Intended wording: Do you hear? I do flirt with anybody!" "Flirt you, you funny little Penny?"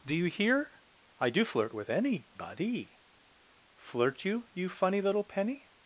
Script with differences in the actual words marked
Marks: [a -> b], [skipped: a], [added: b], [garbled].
Do you hear? I do flirt with anybody!" "Flirt you, you funny little Penny?"